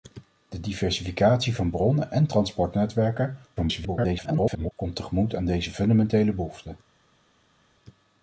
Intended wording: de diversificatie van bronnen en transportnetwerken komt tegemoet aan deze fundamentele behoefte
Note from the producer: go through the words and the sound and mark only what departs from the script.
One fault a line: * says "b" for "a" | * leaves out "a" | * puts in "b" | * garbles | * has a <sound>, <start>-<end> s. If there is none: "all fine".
* garbles